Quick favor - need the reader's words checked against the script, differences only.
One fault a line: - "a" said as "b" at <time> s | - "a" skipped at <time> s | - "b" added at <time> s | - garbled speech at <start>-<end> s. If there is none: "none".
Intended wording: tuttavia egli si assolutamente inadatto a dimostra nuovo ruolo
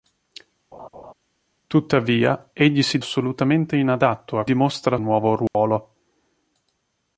none